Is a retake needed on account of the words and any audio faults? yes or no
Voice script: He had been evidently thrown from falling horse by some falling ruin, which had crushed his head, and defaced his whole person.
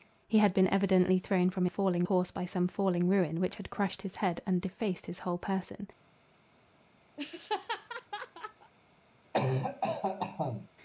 yes